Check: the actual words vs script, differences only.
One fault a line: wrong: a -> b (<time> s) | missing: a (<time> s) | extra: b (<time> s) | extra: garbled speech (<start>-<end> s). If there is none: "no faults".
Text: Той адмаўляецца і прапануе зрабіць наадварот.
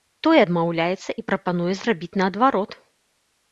no faults